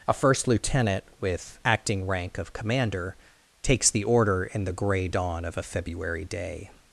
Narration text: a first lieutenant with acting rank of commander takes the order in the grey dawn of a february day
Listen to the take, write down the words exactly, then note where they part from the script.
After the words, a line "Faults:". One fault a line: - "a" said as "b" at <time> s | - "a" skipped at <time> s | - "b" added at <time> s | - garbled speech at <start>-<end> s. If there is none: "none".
a first lieutenant with acting rank of commander takes the order in the grey dawn of a february day
Faults:
none